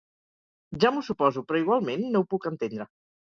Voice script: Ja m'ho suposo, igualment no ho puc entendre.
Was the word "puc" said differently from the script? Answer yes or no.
no